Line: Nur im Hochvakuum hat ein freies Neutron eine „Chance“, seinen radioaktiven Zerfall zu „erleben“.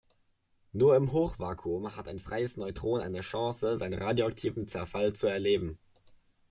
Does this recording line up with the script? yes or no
yes